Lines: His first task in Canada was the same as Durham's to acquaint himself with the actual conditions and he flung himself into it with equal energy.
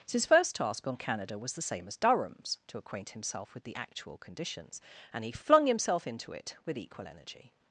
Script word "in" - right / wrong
wrong